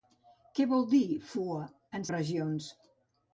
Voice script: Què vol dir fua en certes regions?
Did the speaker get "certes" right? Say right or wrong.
wrong